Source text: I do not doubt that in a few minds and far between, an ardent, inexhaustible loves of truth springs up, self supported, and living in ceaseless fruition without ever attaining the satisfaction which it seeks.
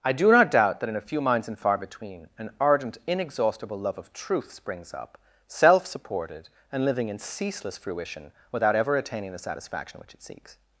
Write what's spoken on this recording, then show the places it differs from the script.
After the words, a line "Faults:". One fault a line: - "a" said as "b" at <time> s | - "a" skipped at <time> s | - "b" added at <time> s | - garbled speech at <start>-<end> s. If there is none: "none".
I do not doubt that in a few minds and far between, an ardent, inexhaustible love of truth springs up, self supported, and living in ceaseless fruition without ever attaining the satisfaction which it seeks.
Faults:
- "loves" said as "love" at 3.8 s